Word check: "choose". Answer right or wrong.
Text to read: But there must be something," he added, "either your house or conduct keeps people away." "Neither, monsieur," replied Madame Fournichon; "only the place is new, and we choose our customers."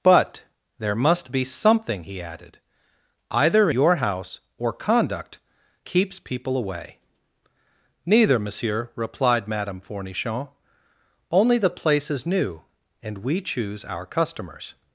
right